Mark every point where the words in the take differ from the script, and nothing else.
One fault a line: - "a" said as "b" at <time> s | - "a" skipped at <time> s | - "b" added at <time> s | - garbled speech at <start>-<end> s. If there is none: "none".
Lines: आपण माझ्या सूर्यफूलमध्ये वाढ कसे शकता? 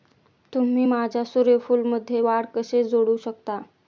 - "आपण" said as "तुम्ही" at 0.5 s
- "जोडू" added at 2.9 s